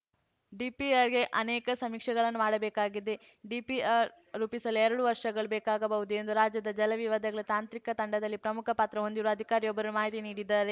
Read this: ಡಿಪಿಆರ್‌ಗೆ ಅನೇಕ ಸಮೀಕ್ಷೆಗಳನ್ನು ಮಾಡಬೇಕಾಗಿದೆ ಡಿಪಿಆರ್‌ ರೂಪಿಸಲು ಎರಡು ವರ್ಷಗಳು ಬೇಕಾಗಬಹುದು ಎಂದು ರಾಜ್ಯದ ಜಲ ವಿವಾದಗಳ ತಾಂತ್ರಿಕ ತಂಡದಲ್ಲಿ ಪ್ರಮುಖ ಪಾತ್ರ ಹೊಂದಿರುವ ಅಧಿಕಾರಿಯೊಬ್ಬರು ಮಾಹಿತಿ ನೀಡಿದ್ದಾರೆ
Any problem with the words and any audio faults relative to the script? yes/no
no